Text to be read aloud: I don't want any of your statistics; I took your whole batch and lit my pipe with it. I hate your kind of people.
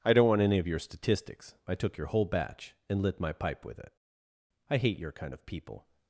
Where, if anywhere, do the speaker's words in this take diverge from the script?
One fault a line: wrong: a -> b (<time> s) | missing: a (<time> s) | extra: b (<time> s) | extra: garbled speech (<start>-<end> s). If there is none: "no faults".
no faults